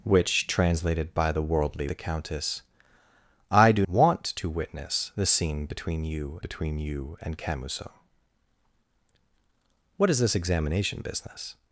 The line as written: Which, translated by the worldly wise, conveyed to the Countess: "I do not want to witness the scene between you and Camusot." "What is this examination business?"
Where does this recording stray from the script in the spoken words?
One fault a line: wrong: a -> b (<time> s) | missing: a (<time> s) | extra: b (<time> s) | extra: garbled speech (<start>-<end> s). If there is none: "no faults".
missing: wise conveyed to (1.9 s)
missing: not (3.9 s)
extra: between you (6.4 s)